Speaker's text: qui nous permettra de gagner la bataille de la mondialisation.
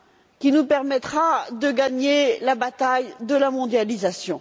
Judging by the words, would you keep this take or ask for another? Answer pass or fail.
pass